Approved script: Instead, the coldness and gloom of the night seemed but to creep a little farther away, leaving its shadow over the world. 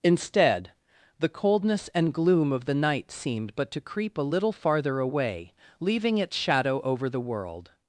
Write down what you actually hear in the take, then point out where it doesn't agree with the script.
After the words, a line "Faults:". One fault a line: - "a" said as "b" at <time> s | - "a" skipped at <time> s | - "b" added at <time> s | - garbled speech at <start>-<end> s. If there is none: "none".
Instead, the coldness and gloom of the night seemed but to creep a little farther away, leaving its shadow over the world.
Faults:
none